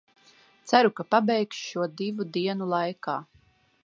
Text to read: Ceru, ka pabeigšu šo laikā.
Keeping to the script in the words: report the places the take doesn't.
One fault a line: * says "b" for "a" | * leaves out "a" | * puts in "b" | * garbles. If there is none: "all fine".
* puts in "divu dienu"